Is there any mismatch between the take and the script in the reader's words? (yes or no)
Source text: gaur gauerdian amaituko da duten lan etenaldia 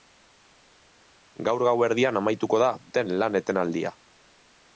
no